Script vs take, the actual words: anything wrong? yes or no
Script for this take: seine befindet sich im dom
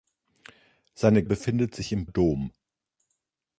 no